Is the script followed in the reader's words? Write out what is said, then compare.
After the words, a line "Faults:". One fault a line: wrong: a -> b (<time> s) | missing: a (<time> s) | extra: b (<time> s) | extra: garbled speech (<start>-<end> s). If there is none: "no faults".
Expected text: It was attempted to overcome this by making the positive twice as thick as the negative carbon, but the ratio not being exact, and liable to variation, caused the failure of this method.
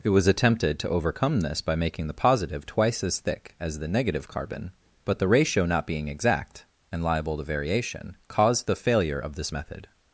It was attempted to overcome this by making the positive twice as thick as the negative carbon, but the ratio not being exact, and liable to variation, caused the failure of this method.
Faults:
no faults